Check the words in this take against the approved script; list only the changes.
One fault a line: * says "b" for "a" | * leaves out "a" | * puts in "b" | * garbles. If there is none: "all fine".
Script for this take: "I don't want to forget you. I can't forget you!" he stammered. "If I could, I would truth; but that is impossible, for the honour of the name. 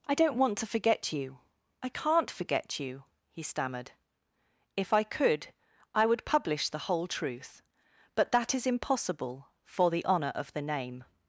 * puts in "publish the whole"